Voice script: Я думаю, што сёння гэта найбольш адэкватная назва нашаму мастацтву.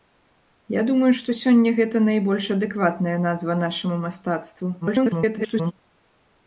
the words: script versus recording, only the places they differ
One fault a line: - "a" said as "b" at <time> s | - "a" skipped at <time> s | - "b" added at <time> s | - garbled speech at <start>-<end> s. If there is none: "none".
- garbled speech at 4.8-5.7 s